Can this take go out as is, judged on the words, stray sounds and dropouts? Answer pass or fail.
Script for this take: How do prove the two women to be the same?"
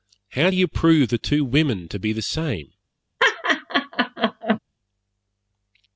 fail